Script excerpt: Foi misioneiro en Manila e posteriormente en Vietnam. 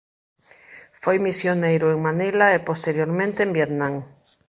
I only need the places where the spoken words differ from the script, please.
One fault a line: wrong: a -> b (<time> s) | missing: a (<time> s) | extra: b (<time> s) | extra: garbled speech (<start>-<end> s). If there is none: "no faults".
no faults